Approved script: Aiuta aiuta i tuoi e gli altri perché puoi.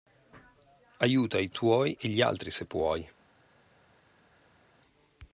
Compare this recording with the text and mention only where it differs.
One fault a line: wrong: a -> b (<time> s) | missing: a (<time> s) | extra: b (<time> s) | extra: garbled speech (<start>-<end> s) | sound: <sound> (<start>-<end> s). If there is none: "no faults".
missing: aiuta (1.4 s)
wrong: perché -> se (2.5 s)